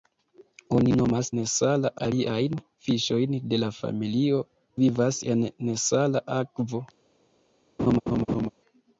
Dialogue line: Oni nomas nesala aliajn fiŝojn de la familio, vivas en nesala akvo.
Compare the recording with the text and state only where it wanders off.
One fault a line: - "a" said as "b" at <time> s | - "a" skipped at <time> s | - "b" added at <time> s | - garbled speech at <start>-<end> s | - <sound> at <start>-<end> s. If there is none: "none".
- laugh at 7.8-8.5 s